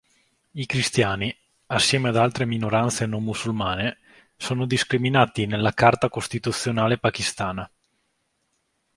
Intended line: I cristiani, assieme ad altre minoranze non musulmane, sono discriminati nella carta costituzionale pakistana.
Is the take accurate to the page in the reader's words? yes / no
yes